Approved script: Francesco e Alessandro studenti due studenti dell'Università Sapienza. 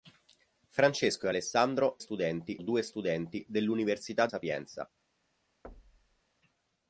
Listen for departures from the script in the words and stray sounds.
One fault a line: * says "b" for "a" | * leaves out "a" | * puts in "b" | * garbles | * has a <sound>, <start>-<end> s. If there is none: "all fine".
* has a thud, 5.6-6.2 s